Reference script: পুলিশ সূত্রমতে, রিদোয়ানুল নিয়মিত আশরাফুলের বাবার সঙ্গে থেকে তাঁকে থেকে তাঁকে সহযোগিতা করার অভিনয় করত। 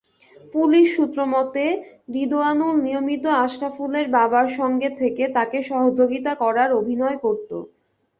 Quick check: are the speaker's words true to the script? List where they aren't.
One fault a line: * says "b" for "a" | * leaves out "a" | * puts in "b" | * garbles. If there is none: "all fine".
* leaves out "থেকে তাঁকে"